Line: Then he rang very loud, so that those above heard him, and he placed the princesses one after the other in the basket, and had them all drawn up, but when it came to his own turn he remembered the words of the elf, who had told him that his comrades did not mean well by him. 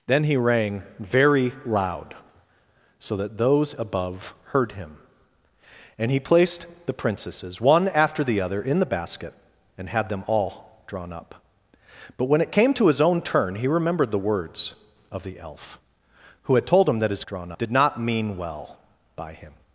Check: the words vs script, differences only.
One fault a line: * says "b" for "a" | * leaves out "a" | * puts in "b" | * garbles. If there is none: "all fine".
* says "drawn" for "comrades"